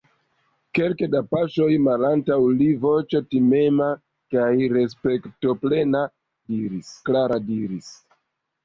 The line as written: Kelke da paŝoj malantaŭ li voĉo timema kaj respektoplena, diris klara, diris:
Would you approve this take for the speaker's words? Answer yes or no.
yes